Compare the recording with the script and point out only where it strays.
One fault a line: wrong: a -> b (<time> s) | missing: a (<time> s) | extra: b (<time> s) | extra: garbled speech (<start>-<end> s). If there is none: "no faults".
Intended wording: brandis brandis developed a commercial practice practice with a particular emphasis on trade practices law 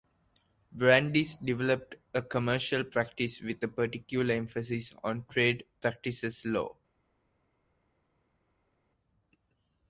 missing: brandis (1.4 s)
missing: practice (3.4 s)